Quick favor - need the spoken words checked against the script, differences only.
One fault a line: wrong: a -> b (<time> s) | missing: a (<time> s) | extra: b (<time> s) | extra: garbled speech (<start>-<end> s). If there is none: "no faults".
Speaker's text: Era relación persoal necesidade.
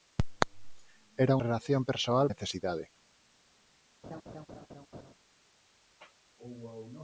no faults